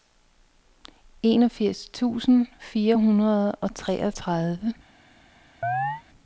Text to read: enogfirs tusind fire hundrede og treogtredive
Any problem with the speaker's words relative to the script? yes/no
no